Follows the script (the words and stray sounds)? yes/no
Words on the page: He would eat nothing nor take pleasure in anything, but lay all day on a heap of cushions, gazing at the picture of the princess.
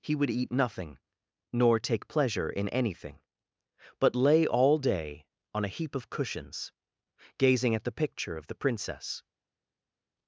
yes